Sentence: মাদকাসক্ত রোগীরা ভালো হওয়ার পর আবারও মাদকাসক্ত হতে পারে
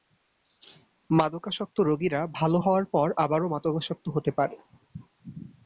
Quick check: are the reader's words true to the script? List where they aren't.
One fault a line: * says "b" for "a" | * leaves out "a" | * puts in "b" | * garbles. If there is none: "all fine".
all fine